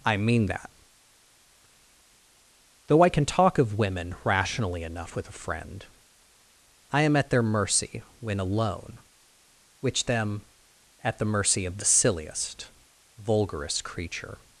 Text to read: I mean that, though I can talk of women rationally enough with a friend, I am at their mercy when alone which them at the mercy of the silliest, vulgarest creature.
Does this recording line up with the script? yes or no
yes